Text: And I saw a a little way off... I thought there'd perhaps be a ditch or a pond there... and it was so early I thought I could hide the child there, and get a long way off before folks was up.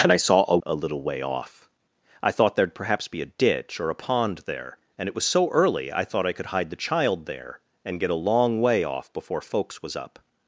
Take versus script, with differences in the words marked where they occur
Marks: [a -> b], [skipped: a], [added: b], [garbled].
And I saw a a little way off... I thought there'd perhaps be a ditch or a pond there... and it was so early I thought I could hide the child there, and get a long way off before folks was up.